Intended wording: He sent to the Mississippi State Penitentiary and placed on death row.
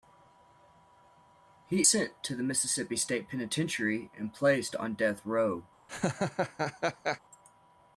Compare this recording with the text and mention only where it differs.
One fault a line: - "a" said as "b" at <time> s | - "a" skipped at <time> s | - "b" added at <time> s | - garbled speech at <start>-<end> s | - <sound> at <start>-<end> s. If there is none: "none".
- laugh at 5.9-7.2 s